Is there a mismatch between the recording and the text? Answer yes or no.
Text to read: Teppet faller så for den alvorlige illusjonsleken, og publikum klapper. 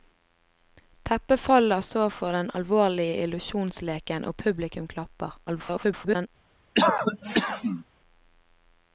yes